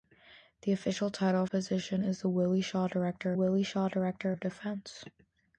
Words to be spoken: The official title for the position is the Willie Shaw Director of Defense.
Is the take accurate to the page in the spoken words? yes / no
no